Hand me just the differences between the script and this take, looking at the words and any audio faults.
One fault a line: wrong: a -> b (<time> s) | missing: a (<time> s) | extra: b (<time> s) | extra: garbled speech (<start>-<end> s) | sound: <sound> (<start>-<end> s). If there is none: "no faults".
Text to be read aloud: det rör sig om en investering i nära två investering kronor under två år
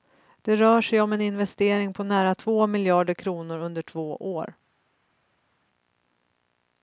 wrong: i -> på (1.9 s)
wrong: investering -> miljarder (2.7 s)